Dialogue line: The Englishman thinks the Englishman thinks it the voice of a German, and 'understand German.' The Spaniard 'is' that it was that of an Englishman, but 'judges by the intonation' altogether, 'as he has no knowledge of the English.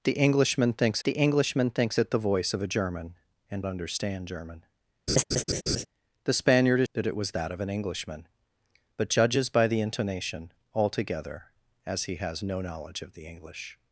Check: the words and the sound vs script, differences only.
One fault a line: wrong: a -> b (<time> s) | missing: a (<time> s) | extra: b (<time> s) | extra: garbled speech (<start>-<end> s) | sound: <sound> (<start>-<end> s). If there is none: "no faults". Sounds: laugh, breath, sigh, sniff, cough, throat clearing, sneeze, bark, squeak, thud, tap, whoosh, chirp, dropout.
sound: laugh (5.1-5.9 s)